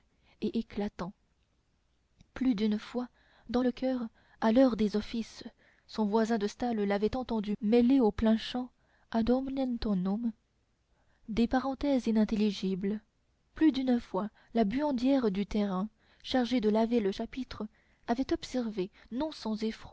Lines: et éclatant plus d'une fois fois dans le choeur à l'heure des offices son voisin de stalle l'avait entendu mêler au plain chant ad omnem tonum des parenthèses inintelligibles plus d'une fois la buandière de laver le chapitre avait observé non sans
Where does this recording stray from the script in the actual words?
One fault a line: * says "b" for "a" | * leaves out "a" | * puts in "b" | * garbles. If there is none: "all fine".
* leaves out "fois"
* puts in "du terrain chargée"